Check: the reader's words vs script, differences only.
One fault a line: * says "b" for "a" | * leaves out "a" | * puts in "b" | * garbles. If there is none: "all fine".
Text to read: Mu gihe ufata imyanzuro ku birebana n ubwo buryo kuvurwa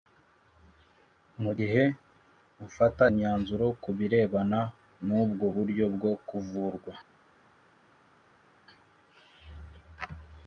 * puts in "bwo"